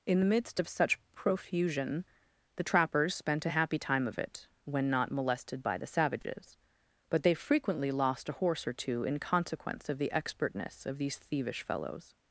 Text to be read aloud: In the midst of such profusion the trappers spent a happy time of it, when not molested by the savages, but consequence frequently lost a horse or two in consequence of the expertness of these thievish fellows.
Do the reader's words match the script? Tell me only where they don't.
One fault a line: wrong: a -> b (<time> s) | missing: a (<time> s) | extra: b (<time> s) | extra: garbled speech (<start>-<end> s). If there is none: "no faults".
wrong: consequence -> they (7.2 s)